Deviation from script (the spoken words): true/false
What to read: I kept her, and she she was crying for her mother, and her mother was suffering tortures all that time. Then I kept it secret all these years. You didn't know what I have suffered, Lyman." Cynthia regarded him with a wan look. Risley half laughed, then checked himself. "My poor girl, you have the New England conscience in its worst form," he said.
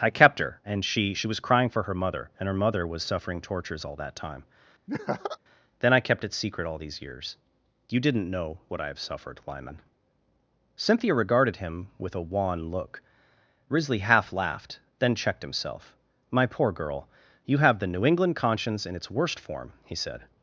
false